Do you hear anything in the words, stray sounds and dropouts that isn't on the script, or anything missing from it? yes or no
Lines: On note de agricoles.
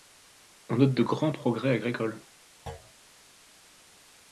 yes